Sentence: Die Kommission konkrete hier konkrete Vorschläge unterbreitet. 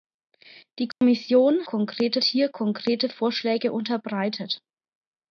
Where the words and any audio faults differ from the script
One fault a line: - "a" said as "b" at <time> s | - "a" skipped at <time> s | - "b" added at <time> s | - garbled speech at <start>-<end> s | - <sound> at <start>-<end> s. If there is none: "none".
- dropout at 0.9-1.0 s